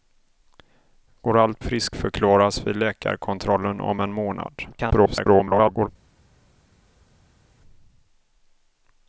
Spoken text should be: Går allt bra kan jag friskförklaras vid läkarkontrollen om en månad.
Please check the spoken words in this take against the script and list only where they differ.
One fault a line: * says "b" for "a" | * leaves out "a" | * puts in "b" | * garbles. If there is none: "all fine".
* leaves out "bra kan jag"
* garbles